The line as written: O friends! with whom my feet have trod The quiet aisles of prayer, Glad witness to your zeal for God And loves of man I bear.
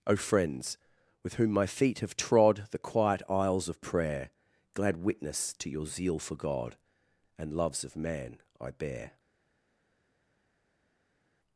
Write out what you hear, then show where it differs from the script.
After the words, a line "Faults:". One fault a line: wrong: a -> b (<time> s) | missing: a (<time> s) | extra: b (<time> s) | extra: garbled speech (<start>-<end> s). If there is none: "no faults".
O friends! with whom my feet have trod The quiet aisles of prayer, Glad witness to your zeal for God And loves of man I bear.
Faults:
no faults